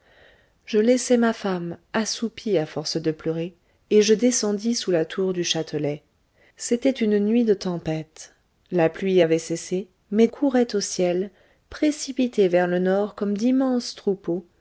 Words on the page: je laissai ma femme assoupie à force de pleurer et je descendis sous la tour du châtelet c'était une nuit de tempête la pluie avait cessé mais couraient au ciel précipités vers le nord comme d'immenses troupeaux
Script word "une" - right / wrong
right